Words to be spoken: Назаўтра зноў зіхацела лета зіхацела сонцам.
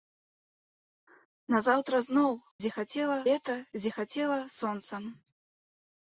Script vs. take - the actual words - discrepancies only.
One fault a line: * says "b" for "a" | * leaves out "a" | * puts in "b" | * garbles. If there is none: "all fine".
all fine